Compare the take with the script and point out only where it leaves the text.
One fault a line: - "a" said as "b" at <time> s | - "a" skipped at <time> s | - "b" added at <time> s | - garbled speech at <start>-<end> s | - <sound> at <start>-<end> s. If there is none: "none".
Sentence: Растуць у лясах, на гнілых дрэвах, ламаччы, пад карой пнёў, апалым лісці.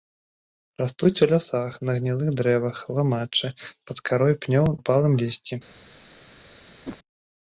- whoosh at 6.8-7.0 s